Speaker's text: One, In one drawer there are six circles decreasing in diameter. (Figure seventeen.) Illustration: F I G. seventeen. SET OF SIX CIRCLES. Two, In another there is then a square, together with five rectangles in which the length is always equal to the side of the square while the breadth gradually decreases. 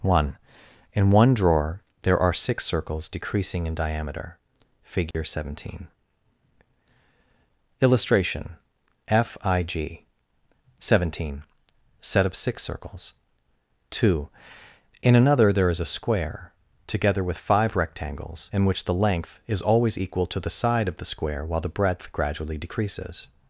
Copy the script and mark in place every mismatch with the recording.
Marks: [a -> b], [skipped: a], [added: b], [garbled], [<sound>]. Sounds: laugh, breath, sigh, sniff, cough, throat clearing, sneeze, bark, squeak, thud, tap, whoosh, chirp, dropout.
One, In one drawer there are six circles decreasing in diameter. (Figure [dropout] seventeen.) Illustration: F I G. seventeen. SET OF SIX CIRCLES. Two, In another there is [skipped: then] a square, together with five rectangles in which the length is always equal to the side of the square while the breadth gradually decreases.